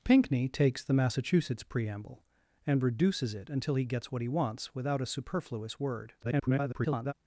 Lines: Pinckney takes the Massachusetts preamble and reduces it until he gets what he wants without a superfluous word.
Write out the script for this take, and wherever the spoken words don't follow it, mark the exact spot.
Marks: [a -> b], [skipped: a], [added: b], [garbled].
Pinckney takes the Massachusetts preamble and reduces it until he gets what he wants without a superfluous word. [garbled]